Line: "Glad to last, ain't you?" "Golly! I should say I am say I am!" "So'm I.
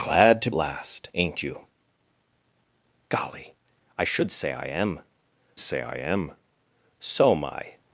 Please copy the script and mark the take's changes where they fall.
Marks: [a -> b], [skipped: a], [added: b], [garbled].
"Glad to last, ain't you?" "Golly! I should say I am say I am!" "So'm I.